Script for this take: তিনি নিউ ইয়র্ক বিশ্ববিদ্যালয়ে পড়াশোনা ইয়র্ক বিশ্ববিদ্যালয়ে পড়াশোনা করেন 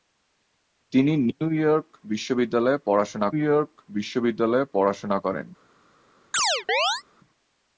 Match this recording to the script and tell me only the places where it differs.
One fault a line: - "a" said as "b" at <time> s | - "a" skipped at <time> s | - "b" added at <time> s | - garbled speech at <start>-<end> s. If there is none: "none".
none